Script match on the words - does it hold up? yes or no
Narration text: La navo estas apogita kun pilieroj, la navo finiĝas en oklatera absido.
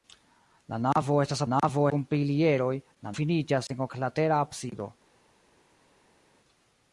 no